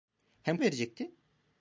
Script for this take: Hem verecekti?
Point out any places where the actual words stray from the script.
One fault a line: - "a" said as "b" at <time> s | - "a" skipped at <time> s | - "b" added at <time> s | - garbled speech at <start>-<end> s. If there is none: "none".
none